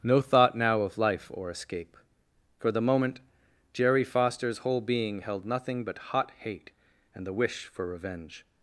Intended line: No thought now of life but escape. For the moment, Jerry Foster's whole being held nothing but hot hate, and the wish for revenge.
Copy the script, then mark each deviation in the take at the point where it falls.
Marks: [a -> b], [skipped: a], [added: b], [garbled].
No thought now of life [but -> or] escape. For the moment, Jerry Foster's whole being held nothing but hot hate, and the wish for revenge.